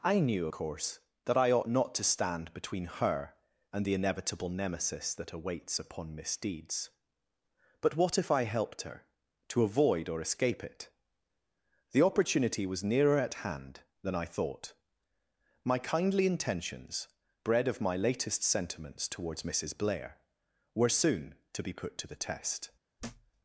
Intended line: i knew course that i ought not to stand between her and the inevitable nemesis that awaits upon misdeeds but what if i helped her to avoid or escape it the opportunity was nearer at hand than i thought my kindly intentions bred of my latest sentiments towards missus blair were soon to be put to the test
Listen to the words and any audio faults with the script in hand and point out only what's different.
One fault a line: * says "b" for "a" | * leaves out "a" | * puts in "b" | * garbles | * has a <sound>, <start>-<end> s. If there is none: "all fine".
* has a thud, 23.0-23.3 s